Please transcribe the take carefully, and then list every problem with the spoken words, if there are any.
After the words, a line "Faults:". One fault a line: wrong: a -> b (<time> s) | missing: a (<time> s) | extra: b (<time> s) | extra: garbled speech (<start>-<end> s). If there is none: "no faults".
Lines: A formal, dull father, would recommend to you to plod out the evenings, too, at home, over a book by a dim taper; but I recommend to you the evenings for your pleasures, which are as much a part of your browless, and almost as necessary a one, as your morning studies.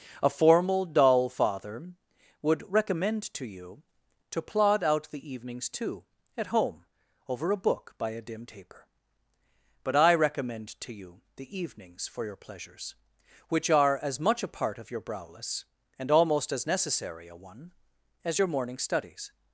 A formal, dull father, would recommend to you to plod out the evenings, too, at home, over a book by a dim taper; but I recommend to you the evenings for your pleasures, which are as much a part of your browless, and almost as necessary a one, as your morning studies.
Faults:
no faults